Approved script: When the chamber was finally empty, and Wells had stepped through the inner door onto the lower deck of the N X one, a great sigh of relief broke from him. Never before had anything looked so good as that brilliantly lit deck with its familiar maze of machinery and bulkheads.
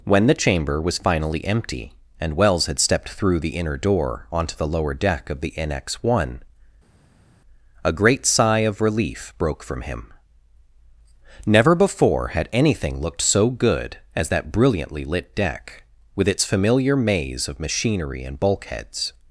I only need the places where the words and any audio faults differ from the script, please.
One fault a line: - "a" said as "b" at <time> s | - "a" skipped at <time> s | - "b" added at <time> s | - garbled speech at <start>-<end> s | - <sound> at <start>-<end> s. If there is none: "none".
none